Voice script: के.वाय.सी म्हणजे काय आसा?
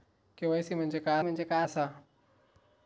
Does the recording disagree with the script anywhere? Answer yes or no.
yes